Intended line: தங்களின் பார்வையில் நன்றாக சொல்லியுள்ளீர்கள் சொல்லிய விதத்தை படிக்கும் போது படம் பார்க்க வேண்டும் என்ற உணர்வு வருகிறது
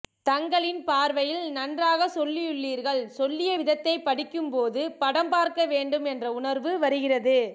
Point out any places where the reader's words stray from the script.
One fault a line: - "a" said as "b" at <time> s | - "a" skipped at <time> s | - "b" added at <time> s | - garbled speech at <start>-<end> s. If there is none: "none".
none